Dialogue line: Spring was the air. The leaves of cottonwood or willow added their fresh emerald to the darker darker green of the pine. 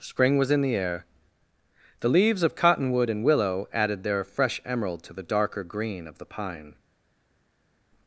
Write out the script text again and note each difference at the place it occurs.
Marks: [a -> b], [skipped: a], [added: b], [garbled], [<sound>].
Spring was [added: in] the air. The leaves of cottonwood [or -> and] willow added their fresh emerald to the darker [skipped: darker] green of the pine.